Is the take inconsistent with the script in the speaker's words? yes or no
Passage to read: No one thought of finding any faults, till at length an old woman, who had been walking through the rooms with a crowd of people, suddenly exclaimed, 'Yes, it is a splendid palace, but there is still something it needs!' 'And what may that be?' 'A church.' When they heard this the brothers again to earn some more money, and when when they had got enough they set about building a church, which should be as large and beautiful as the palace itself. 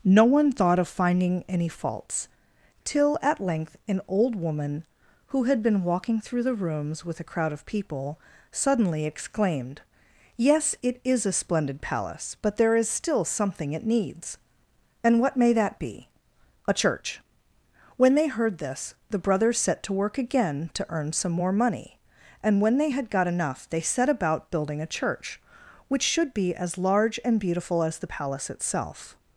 yes